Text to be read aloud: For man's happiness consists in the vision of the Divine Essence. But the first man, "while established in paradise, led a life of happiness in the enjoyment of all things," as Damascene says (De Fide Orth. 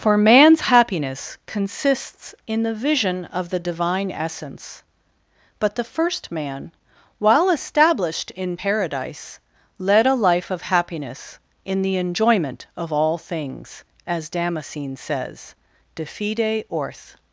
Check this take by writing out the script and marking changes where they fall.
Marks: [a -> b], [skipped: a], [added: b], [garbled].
For man's happiness consists in the vision of the Divine Essence. But the first man, "while established in paradise, led a life of happiness in the enjoyment of all things," as Damascene says (De Fide Orth.